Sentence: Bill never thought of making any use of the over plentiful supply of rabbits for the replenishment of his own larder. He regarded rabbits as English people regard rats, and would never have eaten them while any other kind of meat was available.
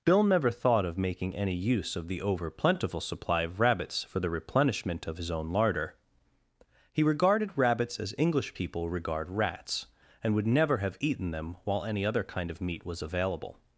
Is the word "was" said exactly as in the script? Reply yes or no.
yes